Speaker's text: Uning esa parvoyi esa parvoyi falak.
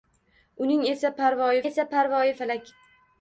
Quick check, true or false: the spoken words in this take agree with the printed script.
true